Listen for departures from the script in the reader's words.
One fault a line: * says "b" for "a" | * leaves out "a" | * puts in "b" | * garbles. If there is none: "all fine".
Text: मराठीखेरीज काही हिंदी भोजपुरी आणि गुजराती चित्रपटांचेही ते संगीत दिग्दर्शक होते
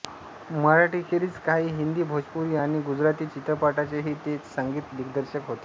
all fine